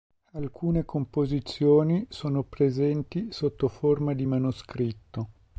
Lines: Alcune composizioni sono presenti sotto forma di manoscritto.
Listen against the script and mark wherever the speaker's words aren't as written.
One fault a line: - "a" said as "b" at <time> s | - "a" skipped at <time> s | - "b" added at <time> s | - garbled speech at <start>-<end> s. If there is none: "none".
none